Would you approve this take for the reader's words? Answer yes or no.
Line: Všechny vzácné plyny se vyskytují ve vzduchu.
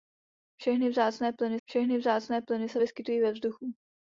no